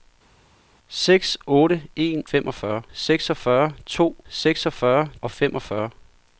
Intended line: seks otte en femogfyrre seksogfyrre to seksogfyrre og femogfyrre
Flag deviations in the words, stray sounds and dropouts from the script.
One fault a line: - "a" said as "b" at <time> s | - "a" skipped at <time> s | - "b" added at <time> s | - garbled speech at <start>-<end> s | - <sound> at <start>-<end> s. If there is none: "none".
none